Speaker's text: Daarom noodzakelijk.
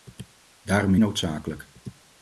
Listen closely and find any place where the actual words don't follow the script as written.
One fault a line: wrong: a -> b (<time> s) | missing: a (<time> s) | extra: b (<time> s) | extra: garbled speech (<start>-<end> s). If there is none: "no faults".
no faults